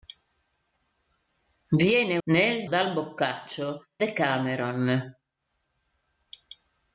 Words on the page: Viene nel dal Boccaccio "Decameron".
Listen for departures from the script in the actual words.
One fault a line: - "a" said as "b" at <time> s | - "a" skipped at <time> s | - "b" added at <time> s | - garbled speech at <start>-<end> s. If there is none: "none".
none